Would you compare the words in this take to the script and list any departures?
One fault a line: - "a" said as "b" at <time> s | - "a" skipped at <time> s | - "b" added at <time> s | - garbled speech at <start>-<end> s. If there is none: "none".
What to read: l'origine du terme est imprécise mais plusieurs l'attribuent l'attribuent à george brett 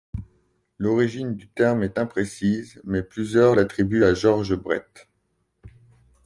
- "l'attribuent" skipped at 4.0 s